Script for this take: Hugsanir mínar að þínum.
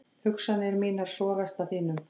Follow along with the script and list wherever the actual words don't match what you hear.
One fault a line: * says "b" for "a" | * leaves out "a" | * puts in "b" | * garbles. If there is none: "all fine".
* puts in "sogast"